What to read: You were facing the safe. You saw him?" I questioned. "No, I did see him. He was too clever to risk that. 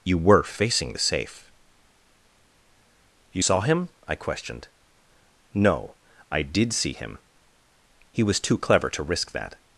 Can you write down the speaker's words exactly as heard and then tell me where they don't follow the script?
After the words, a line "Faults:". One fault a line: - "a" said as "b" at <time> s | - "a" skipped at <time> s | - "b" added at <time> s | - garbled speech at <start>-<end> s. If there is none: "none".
You were facing the safe. You saw him?" I questioned. "No, I did see him. He was too clever to risk that.
Faults:
none